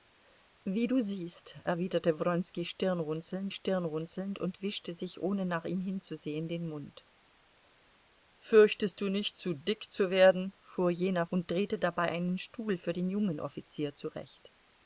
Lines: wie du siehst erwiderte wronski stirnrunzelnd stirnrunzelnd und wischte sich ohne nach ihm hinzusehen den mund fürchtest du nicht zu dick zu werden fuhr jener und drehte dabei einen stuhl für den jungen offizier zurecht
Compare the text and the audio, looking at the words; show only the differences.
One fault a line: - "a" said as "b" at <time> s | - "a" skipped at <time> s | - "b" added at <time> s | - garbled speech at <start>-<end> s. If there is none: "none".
none